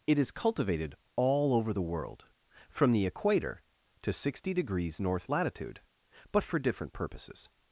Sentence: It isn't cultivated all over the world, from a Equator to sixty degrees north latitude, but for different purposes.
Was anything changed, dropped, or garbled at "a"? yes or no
yes